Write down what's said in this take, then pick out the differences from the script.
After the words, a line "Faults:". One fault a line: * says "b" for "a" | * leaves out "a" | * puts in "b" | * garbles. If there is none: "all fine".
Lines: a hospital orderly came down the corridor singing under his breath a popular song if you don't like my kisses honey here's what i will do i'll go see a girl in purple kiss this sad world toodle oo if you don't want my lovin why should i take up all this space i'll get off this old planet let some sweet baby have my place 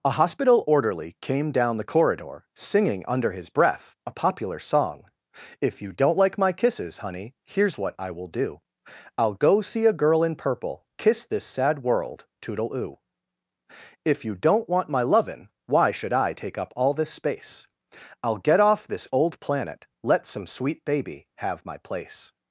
a hospital orderly came down the corridor singing under his breath a popular song if you don't like my kisses honey here's what i will do i'll go see a girl in purple kiss this sad world toodle oo if you don't want my lovin why should i take up all this space i'll get off this old planet let some sweet baby have my place
Faults:
all fine